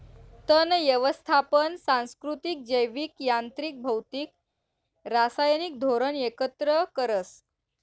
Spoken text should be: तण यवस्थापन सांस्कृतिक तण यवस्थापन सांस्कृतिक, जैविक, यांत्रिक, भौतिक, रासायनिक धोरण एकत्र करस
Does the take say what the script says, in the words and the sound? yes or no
no